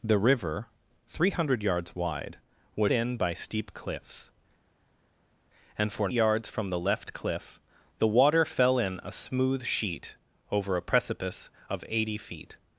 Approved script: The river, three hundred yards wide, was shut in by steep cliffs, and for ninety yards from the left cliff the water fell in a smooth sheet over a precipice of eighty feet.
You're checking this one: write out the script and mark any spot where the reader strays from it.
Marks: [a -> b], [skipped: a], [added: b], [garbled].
The river, three hundred yards wide, was [skipped: shut] in by steep cliffs, and for [skipped: ninety] yards from the left cliff the water fell in a smooth sheet over a precipice of eighty feet.